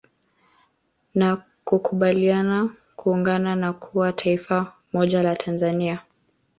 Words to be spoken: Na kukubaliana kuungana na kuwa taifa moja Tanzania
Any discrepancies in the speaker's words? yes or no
yes